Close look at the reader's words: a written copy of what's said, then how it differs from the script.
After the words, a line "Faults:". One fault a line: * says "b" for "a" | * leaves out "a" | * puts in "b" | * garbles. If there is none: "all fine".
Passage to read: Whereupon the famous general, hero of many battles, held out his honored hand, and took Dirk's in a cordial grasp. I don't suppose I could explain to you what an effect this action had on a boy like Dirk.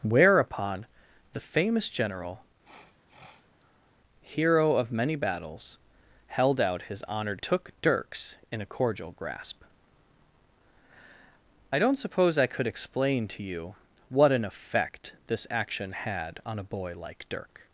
Whereupon the famous general, hero of many battles, held out his honored took Dirk's in a cordial grasp. I don't suppose I could explain to you what an effect this action had on a boy like Dirk.
Faults:
* leaves out "hand and"